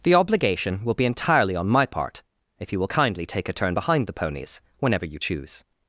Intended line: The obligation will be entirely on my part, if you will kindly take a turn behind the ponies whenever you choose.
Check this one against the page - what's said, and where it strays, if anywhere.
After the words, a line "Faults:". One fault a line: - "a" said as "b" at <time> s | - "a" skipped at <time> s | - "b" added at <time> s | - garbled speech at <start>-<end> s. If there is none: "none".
The obligation will be entirely on my part, if you will kindly take a turn behind the ponies whenever you choose.
Faults:
none